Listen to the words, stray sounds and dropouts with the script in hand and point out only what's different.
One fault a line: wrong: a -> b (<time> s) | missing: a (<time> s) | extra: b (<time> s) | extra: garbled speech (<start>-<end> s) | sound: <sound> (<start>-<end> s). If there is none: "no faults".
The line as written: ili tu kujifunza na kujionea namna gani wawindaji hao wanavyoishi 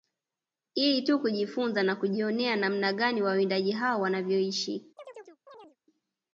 sound: chirp (5.0-5.8 s)